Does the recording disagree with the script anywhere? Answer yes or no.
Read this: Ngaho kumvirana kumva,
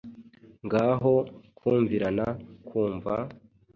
no